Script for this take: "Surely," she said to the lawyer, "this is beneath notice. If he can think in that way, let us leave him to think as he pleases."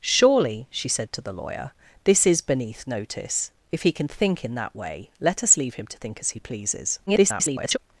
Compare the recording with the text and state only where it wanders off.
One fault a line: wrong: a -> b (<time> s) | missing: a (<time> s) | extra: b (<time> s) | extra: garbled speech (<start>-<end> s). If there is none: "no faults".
extra: garbled speech (7.1-7.8 s)